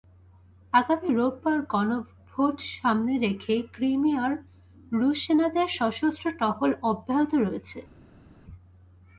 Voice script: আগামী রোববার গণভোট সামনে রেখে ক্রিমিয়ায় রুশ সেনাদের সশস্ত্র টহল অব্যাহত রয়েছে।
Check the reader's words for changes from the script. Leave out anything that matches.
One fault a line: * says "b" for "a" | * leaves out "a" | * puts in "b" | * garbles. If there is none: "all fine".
all fine